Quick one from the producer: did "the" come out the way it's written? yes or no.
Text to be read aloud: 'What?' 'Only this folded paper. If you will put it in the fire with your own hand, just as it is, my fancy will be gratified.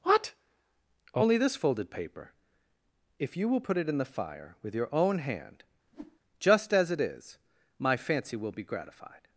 yes